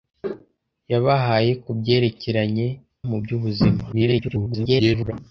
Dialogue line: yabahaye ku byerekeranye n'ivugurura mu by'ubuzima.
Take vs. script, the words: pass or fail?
fail